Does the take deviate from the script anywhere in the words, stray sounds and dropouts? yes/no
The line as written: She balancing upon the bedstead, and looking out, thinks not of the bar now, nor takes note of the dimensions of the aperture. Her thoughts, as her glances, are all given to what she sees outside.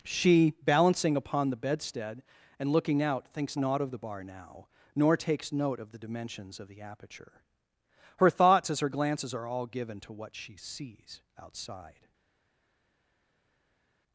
no